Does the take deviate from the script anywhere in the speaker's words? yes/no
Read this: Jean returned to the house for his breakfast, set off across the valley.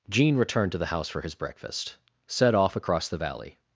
no